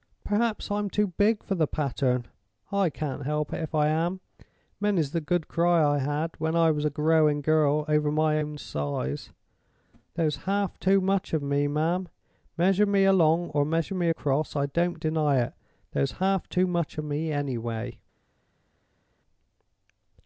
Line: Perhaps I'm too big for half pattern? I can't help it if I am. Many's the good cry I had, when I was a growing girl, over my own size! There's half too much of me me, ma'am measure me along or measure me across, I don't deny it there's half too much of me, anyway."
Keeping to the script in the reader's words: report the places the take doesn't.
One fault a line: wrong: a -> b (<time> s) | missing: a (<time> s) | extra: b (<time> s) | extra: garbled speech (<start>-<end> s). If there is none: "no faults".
wrong: half -> the (1.5 s)
missing: me (11.7 s)